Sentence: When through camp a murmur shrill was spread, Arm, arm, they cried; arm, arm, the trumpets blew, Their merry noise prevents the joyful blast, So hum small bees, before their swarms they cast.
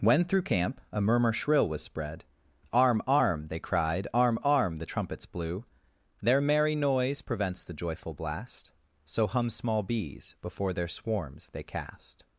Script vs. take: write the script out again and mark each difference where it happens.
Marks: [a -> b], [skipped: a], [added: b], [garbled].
When through camp a murmur shrill was spread, Arm, arm, they cried; arm, arm, the trumpets blew, Their merry noise prevents the joyful blast, So hum small bees, before their swarms they cast.